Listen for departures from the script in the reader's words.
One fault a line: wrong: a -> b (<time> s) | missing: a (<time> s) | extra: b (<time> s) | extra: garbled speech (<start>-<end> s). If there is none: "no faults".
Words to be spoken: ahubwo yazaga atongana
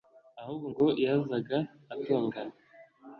extra: ngo (0.7 s)